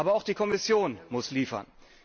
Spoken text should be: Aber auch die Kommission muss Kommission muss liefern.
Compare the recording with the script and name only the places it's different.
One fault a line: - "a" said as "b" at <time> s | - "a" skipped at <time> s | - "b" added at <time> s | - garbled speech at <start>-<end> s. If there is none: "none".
- "Kommission muss" skipped at 1.3 s